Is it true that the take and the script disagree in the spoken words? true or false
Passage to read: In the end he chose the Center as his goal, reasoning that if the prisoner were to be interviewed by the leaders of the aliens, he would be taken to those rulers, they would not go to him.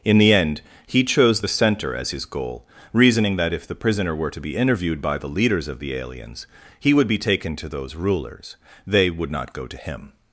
false